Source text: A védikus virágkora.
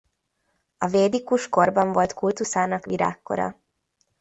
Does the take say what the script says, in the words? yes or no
no